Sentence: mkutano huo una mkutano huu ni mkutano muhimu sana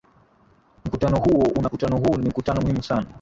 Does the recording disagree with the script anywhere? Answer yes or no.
no